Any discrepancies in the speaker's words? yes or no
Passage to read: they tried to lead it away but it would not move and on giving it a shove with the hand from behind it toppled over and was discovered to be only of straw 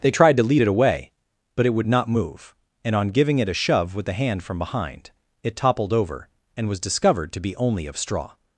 no